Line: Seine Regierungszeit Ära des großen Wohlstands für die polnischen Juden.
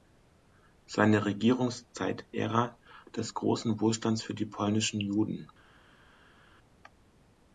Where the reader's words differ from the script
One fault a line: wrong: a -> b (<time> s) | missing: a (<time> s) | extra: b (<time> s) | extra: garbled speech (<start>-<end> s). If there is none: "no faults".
no faults